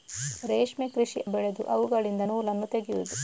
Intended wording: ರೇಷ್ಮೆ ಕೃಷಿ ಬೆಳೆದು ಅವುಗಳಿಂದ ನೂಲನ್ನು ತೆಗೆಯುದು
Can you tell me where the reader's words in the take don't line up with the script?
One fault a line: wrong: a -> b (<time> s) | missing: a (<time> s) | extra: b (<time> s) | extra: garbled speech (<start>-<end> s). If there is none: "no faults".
no faults